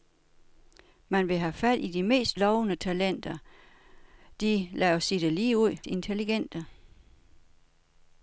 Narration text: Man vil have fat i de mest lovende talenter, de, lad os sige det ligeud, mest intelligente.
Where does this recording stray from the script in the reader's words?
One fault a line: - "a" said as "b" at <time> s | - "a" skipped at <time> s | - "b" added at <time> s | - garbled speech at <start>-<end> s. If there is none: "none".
- "mest" skipped at 5.8 s